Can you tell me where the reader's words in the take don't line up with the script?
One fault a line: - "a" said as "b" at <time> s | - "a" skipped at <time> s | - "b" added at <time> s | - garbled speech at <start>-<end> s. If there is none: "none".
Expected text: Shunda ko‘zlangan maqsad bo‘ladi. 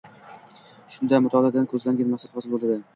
- "mutolaadan" added at 1.3 s
- "hosil" added at 2.4 s